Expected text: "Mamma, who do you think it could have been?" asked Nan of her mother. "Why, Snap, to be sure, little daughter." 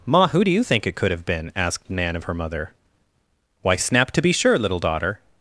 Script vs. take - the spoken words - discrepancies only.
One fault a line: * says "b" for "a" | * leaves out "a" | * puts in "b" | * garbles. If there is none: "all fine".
* says "Ma" for "Mamma"